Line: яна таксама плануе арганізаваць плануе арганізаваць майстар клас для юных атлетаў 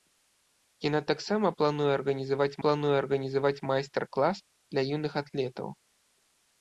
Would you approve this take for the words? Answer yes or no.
yes